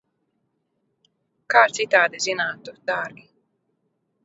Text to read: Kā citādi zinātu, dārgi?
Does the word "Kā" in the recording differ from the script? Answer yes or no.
no